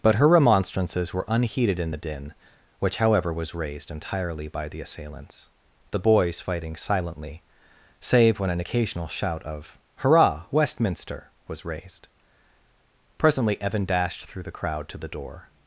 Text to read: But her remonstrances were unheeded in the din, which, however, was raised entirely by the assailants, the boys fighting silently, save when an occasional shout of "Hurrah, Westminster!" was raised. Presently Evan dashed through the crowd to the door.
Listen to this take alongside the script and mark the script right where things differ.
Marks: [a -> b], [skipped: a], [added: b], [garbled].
But her remonstrances were unheeded in the din, which, however, was raised entirely by the assailants, the boys fighting silently, save when an occasional shout of "Hurrah, Westminster!" was raised. Presently Evan dashed through the crowd to the door.